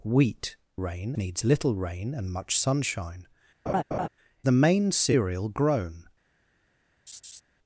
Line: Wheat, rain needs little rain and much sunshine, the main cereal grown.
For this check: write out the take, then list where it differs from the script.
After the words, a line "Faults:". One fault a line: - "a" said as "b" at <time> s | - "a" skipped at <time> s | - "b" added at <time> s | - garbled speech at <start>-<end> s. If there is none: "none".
Wheat, rain needs little rain and much sunshine, the main cereal grown.
Faults:
none